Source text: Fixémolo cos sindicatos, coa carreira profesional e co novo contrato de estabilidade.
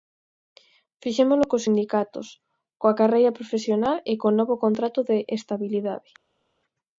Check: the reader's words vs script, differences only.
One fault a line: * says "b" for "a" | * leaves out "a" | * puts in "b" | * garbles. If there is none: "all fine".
all fine